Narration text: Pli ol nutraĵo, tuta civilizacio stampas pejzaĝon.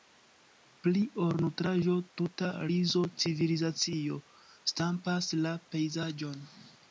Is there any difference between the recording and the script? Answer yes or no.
yes